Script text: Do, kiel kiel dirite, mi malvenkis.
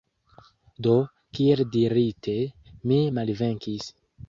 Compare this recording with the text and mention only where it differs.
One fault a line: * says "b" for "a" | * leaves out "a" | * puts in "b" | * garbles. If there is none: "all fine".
* leaves out "kiel"